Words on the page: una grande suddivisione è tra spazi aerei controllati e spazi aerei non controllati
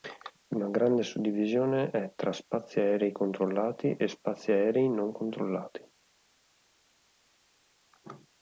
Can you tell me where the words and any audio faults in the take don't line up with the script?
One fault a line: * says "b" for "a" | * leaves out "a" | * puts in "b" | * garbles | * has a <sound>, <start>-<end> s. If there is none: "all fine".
all fine